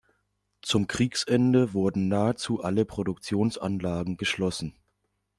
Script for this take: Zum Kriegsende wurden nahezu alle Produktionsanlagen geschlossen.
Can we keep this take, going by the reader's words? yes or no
yes